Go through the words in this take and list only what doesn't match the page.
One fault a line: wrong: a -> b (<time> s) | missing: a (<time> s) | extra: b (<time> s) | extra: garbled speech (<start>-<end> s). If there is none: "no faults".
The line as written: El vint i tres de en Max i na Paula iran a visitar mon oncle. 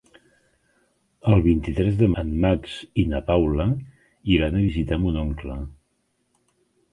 no faults